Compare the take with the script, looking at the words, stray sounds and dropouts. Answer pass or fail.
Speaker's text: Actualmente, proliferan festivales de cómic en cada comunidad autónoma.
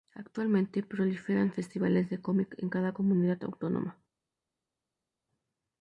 pass